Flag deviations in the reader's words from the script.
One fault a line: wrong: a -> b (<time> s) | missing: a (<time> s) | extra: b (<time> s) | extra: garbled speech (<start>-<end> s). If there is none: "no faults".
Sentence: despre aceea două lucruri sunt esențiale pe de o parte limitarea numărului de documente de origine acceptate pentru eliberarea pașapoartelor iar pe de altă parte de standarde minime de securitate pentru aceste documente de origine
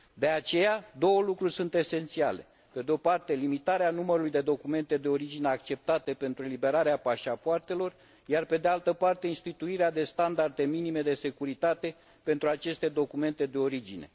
wrong: despre -> de (0.1 s)
extra: instituirea (9.3 s)